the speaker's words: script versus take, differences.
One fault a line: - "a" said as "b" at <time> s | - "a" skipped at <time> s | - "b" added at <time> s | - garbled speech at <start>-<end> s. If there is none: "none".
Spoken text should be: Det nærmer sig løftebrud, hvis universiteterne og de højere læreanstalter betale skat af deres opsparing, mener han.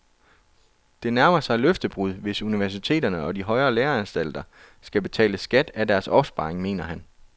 - "skal" added at 4.8 s